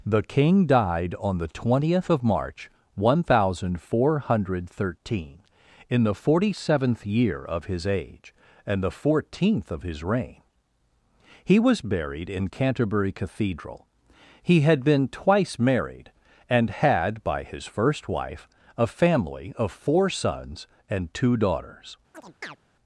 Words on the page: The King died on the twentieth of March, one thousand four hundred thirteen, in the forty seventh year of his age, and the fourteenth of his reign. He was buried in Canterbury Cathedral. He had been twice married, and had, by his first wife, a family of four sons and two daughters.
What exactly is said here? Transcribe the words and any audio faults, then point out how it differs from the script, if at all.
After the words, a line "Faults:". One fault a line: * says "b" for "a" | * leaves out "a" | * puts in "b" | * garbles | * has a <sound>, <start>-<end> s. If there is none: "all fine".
The King died on the twentieth of March, one thousand four hundred thirteen, in the forty seventh year of his age, and the fourteenth of his reign. He was buried in Canterbury Cathedral. He had been twice married, and had, by his first wife, a family of four sons and two daughters.
Faults:
* has a chirp, 22.1-22.6 s